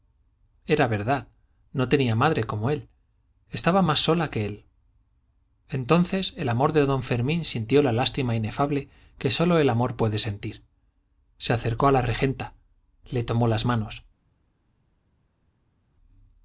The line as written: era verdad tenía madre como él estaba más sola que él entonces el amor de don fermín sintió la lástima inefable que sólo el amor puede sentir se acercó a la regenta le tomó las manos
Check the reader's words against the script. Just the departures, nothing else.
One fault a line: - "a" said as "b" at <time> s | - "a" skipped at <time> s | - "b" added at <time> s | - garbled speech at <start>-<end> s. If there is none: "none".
- "no" added at 1.7 s